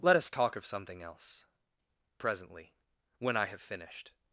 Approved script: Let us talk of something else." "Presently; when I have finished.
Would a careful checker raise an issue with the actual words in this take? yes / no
no